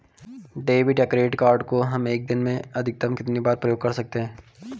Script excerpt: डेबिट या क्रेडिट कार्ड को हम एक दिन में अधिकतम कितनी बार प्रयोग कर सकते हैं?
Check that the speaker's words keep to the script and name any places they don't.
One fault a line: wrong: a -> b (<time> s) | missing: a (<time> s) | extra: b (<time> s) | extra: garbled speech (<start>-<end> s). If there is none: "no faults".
no faults